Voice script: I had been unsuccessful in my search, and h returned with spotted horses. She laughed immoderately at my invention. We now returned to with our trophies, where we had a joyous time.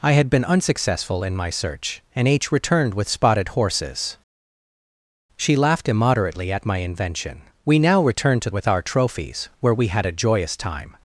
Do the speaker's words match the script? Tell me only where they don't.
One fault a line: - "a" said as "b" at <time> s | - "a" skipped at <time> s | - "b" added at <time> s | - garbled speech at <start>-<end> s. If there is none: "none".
none